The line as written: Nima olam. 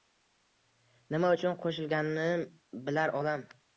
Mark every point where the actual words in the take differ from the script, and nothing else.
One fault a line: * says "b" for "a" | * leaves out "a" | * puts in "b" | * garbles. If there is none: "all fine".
* puts in "uchun qo‘shilganim bilar"